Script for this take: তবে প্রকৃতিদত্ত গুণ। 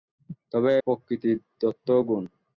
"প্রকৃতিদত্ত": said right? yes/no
yes